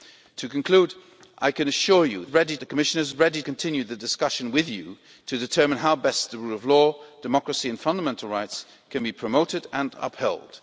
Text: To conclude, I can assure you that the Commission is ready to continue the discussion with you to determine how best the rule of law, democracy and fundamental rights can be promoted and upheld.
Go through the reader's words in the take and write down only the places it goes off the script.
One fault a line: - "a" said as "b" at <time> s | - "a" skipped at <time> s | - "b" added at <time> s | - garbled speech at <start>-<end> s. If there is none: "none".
- "that" said as "ready" at 2.3 s
- "to" skipped at 3.4 s